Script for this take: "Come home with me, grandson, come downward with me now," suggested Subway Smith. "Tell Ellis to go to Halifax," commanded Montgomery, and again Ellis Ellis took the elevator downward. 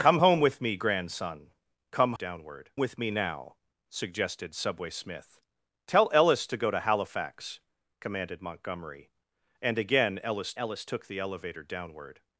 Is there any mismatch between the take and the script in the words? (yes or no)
no